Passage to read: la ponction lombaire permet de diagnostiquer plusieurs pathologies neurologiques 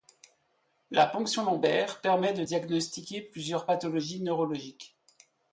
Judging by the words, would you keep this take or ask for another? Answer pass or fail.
pass